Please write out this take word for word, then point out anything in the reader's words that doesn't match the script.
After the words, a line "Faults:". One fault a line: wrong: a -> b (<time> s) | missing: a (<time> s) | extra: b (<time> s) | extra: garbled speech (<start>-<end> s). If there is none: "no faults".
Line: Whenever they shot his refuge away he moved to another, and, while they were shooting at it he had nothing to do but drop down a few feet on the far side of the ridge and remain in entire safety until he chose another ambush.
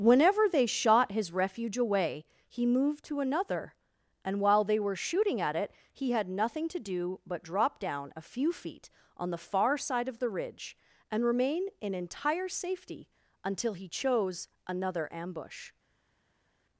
Whenever they shot his refuge away he moved to another, and, while they were shooting at it he had nothing to do but drop down a few feet on the far side of the ridge and remain in entire safety until he chose another ambush.
Faults:
no faults